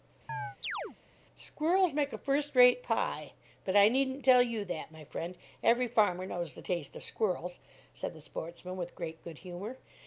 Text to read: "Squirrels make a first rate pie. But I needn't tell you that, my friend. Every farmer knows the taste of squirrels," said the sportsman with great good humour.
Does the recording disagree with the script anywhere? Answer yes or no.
no